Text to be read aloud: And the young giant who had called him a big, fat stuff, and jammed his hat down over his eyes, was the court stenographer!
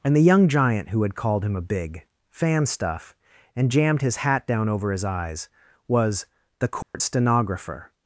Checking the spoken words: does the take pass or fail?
fail